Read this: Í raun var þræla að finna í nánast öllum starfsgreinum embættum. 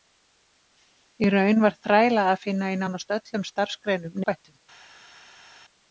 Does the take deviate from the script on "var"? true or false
false